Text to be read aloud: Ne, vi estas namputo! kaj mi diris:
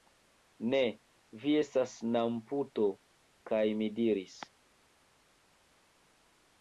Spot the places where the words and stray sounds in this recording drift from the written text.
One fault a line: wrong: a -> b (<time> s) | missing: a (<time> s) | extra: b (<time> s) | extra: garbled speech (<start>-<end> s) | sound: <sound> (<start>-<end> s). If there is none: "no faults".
no faults